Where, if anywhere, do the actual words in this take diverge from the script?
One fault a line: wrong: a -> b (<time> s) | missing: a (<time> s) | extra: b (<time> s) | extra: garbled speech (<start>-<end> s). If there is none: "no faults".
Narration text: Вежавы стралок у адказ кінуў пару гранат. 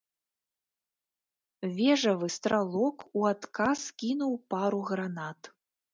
no faults